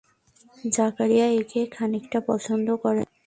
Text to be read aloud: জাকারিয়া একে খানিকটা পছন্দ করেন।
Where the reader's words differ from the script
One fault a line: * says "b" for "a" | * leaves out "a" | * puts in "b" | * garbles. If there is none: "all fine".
all fine